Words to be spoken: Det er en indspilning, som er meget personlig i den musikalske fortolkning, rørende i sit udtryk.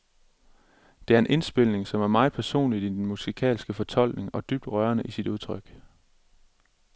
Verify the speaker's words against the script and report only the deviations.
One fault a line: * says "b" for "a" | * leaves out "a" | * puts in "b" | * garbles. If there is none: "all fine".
* puts in "og dybt"